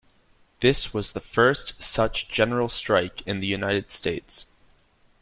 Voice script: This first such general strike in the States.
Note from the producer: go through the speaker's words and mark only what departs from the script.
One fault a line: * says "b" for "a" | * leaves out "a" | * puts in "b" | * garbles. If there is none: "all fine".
* puts in "was the"
* puts in "United"